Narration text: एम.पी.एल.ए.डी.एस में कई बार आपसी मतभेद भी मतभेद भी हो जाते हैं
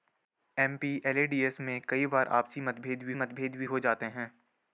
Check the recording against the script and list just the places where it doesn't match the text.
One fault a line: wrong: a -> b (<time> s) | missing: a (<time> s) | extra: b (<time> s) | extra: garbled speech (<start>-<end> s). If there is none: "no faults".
no faults